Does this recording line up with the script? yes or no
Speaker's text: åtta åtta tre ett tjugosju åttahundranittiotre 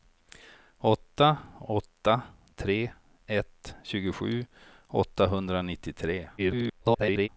no